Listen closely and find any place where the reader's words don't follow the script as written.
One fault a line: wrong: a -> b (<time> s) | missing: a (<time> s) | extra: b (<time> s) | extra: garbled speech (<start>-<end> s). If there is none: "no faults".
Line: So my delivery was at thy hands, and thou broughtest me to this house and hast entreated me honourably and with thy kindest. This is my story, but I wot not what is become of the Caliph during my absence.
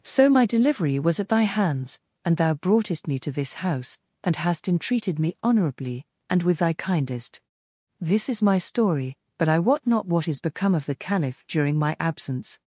no faults